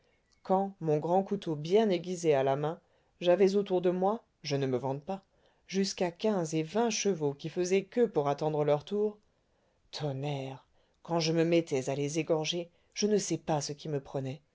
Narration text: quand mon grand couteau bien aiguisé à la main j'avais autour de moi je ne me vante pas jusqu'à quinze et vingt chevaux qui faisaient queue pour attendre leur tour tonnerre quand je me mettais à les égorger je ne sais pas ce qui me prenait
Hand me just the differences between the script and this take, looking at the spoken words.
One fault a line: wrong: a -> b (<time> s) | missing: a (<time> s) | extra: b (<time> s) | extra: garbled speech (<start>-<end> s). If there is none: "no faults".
no faults